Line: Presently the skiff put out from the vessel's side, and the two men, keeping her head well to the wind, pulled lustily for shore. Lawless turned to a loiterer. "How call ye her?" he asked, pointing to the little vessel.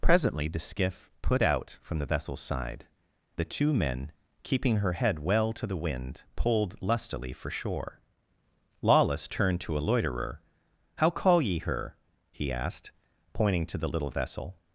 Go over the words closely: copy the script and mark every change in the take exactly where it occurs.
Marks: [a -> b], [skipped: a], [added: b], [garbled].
Presently the skiff put out from the vessel's side, [skipped: and] the two men, keeping her head well to the wind, pulled lustily for shore. Lawless turned to a loiterer. "How call ye her?" he asked, pointing to the little vessel.